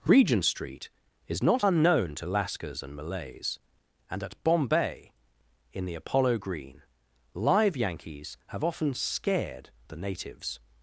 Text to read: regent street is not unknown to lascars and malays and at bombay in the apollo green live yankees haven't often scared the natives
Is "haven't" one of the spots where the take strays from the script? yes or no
yes